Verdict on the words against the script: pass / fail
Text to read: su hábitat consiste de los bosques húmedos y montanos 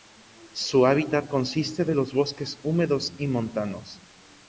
pass